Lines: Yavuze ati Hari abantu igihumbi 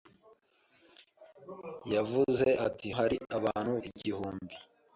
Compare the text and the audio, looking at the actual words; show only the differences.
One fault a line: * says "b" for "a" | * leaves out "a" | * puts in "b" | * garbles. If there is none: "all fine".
all fine